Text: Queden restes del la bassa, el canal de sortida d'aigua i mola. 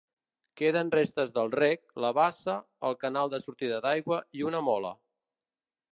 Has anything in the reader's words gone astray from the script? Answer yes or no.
yes